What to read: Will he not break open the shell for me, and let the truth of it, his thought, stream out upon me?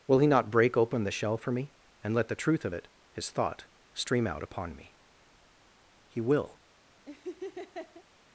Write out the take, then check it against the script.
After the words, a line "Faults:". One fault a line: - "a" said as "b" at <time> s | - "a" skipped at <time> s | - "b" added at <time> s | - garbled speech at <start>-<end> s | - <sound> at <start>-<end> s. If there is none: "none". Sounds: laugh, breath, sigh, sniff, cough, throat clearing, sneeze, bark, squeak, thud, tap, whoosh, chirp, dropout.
Will he not break open the shell for me, and let the truth of it, his thought, stream out upon me? He will
Faults:
- "He will" added at 6.1 s
- laugh at 7.1-8.0 s